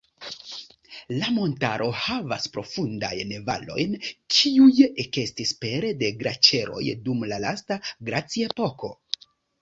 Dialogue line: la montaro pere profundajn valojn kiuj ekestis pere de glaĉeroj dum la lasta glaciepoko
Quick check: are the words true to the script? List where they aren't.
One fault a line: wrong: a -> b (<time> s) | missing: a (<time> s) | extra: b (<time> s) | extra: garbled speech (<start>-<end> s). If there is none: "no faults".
wrong: pere -> havas (2.0 s)